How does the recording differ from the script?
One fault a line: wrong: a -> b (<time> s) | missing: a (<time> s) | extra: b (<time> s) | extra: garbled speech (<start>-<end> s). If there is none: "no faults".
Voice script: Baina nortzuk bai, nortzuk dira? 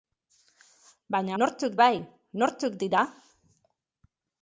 no faults